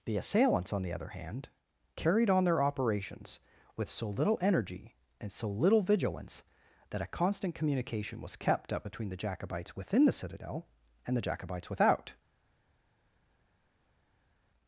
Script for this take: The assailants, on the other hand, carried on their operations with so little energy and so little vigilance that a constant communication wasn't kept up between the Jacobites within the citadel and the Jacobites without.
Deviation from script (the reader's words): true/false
true